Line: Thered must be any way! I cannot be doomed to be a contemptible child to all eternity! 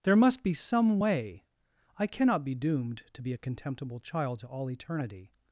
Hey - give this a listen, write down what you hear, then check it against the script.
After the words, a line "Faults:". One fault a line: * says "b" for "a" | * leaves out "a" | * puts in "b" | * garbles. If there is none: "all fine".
There must be some way! I cannot be doomed to be a contemptible child to all eternity!
Faults:
* says "There" for "Thered"
* says "some" for "any"